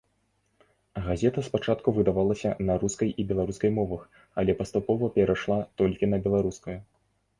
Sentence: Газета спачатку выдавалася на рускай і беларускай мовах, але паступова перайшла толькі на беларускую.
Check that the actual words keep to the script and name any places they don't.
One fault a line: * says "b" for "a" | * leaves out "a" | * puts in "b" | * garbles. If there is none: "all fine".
all fine